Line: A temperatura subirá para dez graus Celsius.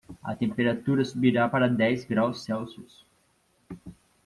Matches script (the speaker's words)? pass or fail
pass